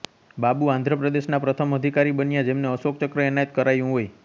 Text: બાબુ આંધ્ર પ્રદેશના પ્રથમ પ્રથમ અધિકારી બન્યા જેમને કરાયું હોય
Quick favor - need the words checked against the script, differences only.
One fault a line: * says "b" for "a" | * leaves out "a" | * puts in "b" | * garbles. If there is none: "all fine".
* leaves out "પ્રથમ"
* puts in "અશોક ચક્ર એનાયત"